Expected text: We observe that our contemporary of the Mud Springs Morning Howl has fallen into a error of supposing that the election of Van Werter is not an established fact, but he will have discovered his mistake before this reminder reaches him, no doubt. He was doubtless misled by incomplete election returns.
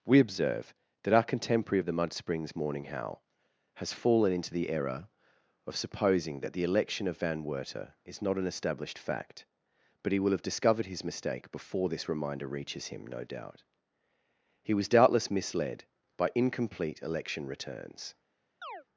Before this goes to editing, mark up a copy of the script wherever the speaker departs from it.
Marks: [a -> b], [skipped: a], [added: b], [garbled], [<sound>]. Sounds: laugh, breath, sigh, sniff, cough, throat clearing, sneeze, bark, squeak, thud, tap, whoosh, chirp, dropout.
We observe that our contemporary of the Mud Springs Morning Howl has fallen into [a -> the] error of supposing that the election of Van Werter is not an established fact, but he will have discovered his mistake before this reminder reaches him, no doubt. He was doubtless misled by incomplete election returns. [chirp]